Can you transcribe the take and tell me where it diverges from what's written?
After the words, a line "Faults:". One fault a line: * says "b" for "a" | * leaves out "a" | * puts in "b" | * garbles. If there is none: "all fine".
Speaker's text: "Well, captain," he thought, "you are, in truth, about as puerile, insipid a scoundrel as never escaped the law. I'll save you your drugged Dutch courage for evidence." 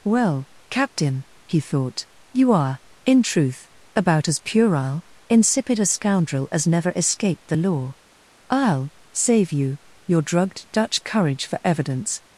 "Well, captain," he thought, "you are, in truth, about as puerile, insipid a scoundrel as never escaped the law. I'll save you your drugged Dutch courage for evidence."
Faults:
all fine